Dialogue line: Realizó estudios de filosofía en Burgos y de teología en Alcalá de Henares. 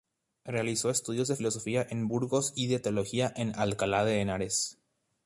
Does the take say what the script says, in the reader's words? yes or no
yes